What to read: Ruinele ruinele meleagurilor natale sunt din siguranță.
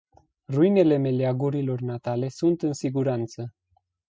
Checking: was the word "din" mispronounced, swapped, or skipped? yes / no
yes